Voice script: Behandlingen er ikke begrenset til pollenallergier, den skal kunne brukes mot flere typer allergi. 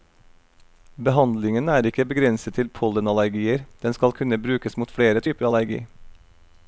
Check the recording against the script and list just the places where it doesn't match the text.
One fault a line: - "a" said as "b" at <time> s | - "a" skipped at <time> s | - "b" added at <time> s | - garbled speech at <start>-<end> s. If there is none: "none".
none